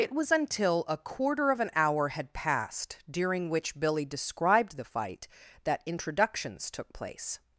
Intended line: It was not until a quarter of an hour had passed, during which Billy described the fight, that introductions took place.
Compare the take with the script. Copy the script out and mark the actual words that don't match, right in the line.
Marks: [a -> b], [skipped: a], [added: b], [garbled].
It was [skipped: not] until a quarter of an hour had passed, during which Billy described the fight, that introductions took place.